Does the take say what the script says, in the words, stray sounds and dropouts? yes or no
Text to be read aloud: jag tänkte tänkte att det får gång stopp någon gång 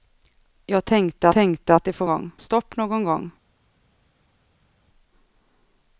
yes